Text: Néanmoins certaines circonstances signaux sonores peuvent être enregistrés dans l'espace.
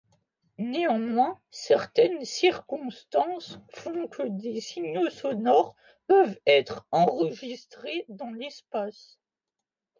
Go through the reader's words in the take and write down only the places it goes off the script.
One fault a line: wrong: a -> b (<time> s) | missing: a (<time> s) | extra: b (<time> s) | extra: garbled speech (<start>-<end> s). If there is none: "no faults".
extra: font que des (3.7 s)